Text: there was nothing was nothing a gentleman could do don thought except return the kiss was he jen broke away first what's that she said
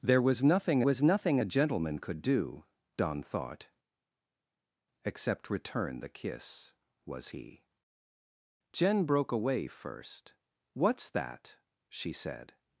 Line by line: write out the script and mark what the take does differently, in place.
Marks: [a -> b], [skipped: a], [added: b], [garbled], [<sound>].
there was nothing was nothing a gentleman could do don thought except return the kiss was he jen broke away first what's that she said